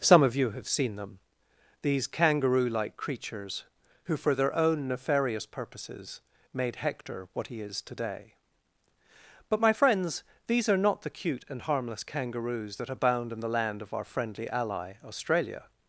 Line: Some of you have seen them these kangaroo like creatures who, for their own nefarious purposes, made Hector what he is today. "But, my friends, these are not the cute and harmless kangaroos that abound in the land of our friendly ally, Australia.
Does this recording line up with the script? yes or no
yes